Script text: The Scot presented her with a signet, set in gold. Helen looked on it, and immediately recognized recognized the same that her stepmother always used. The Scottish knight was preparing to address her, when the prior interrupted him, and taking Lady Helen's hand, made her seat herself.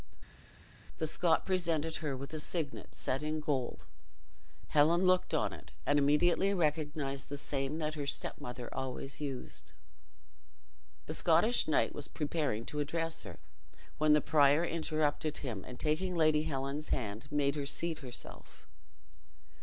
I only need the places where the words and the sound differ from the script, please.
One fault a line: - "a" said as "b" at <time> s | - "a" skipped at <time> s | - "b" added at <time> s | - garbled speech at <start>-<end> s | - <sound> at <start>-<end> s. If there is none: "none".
- "recognized" skipped at 7.3 s